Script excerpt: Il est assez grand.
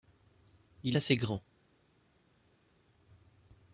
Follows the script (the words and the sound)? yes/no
no